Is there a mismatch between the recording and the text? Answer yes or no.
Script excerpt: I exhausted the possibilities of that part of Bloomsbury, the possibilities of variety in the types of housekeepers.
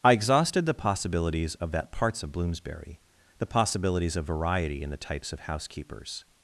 yes